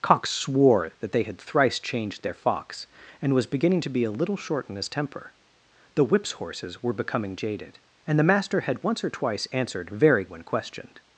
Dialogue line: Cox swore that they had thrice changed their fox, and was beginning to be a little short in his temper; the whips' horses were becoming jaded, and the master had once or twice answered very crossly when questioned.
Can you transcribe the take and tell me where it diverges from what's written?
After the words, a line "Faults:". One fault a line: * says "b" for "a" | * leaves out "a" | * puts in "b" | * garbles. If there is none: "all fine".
Cox swore that they had thrice changed their fox, and was beginning to be a little short in his temper; the whips' horses were becoming jaded, and the master had once or twice answered very when questioned.
Faults:
* leaves out "crossly"